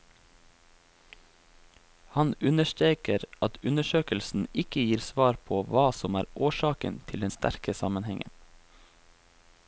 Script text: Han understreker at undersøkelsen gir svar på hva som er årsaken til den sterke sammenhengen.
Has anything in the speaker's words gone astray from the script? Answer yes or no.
yes